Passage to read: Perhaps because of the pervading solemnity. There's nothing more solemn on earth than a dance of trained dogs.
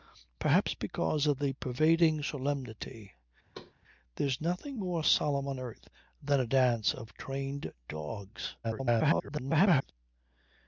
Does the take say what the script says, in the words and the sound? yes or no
no